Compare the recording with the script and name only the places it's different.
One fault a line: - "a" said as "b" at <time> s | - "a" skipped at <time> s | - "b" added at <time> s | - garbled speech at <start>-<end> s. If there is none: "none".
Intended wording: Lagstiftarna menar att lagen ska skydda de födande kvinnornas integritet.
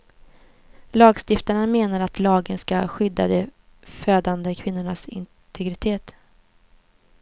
none